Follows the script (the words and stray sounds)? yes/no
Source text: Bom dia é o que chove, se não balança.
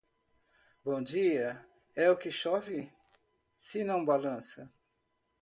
yes